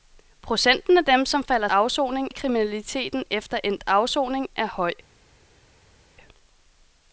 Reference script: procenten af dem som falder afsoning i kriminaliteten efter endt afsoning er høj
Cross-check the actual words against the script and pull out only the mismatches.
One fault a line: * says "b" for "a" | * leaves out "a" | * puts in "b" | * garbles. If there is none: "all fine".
all fine